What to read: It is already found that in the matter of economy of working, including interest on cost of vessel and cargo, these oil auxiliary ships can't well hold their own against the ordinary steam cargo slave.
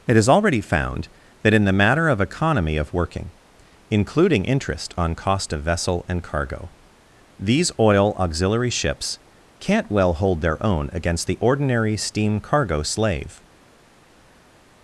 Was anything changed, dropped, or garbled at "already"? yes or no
no